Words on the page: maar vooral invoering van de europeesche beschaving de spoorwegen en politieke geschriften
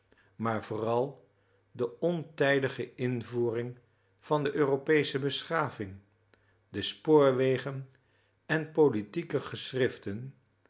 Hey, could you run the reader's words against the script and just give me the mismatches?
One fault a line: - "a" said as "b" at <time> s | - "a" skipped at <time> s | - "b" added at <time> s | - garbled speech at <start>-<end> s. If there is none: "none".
- "de ontijdige" added at 1.7 s